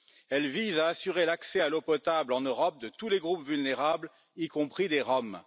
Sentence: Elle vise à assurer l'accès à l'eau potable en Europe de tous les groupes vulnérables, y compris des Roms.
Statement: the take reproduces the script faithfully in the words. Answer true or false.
true